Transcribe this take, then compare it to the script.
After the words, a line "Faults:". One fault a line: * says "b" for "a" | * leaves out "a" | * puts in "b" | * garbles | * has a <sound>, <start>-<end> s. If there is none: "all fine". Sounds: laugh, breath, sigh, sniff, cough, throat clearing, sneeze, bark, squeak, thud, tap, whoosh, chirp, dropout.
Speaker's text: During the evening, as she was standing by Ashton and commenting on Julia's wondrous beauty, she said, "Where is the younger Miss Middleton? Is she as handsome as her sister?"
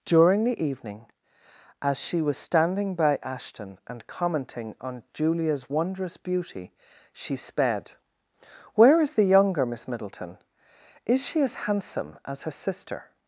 During the evening, as she was standing by Ashton and commenting on Julia's wondrous beauty, she sped, "Where is the younger Miss Middleton? Is she as handsome as her sister?"
Faults:
* says "sped" for "said"